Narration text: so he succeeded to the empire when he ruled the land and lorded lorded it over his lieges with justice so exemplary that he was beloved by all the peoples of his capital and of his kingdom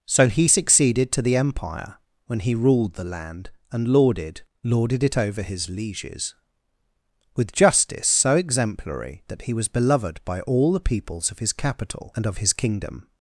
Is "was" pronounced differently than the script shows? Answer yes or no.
no